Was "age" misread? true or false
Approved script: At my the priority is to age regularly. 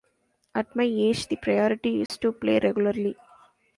true